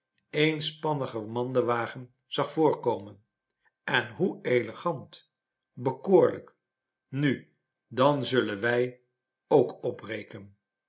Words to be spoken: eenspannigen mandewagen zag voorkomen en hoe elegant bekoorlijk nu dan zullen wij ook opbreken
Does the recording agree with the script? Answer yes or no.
yes